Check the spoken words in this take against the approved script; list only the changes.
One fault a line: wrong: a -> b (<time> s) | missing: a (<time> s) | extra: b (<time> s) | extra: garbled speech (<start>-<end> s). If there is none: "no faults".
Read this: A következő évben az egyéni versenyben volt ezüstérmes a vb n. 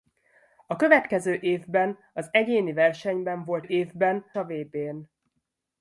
wrong: ezüstérmes -> évben (3.6 s)